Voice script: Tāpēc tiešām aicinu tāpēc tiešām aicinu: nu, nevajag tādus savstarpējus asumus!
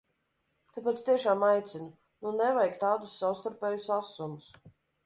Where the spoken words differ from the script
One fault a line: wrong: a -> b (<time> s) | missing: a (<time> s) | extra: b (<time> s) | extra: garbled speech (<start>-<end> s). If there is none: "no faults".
missing: tāpēc tiešām aicinu (1.9 s)